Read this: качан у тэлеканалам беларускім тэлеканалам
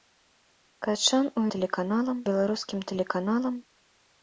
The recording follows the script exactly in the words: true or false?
true